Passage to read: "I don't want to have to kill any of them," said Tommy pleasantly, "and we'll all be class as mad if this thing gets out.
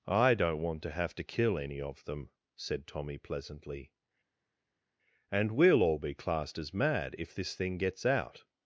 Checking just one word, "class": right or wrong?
wrong